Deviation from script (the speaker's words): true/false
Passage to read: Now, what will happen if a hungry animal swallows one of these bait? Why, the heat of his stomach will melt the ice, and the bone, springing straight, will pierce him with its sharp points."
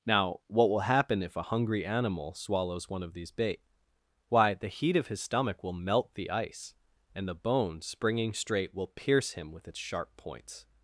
false